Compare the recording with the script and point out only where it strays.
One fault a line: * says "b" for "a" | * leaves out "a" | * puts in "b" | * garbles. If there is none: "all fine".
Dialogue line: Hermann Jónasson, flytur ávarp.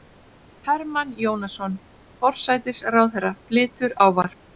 * puts in "forsætisráðherra"